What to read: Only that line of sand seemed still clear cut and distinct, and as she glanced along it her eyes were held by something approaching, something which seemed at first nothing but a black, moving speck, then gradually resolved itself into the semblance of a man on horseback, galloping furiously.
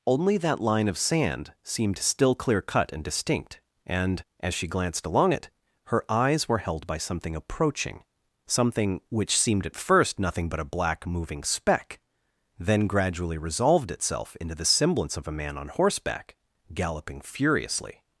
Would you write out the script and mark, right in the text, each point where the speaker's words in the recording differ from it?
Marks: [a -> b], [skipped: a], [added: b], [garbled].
Only that line of sand seemed still clear cut and distinct, and as she glanced along it her eyes were held by something approaching, something which seemed at first nothing but a black, moving speck, then gradually resolved itself into the semblance of a man on horseback, galloping furiously.